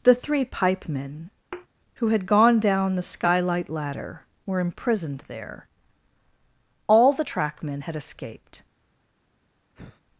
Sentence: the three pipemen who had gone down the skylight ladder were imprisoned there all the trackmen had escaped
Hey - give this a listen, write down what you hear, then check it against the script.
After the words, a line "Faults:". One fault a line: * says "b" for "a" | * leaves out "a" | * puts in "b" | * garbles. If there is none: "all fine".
the three pipemen who had gone down the skylight ladder were imprisoned there all the trackmen had escaped
Faults:
all fine